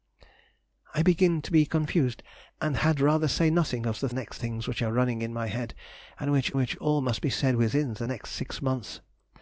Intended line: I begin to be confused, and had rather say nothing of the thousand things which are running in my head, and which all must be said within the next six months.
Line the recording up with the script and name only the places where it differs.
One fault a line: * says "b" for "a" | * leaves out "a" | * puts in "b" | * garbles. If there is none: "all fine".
* says "next" for "thousand"
* puts in "which"